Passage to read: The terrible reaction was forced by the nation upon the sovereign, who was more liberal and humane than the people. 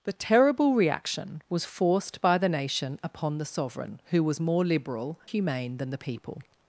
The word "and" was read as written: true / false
false